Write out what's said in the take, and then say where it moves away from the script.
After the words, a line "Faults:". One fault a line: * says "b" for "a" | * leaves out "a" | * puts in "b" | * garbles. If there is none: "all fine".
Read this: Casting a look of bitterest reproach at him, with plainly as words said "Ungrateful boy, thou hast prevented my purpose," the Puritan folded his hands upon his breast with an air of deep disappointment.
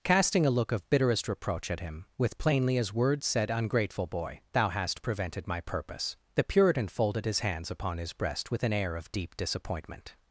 Casting a look of bitterest reproach at him, with plainly as words said "Ungrateful boy, thou hast prevented my purpose," the Puritan folded his hands upon his breast with an air of deep disappointment.
Faults:
all fine